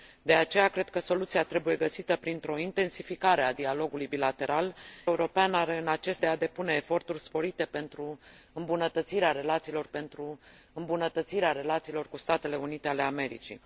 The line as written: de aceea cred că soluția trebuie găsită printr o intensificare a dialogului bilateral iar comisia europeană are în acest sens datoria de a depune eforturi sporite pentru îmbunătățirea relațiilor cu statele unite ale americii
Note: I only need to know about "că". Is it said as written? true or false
true